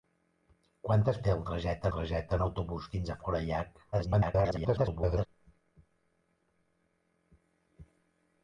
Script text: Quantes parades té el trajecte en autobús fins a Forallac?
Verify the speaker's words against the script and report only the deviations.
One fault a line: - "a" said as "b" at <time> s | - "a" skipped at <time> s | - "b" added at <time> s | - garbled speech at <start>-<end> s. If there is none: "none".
- "parades" skipped at 1.2 s
- "trajecte" added at 2.0 s
- garbled speech at 3.9-5.3 s